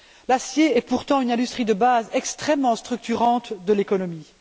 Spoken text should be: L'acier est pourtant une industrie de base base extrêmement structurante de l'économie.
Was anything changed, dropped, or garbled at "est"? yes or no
no